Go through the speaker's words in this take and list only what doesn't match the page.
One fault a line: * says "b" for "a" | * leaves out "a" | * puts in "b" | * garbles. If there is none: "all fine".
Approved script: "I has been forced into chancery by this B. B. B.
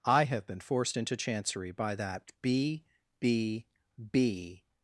* says "have" for "has"
* says "that" for "this"